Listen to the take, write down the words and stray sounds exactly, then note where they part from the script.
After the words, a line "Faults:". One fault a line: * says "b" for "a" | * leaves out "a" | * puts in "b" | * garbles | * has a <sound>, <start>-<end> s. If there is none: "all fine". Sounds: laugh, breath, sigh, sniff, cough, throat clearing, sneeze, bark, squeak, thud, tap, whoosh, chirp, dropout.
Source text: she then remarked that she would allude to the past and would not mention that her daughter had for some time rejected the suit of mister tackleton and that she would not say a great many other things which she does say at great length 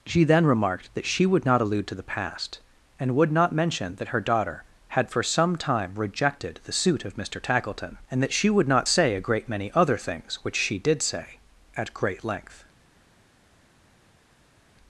she then remarked that she would not allude to the past and would not mention that her daughter had for some time rejected the suit of mister tackleton and that she would not say a great many other things which she did say at great length
Faults:
* puts in "not"
* says "did" for "does"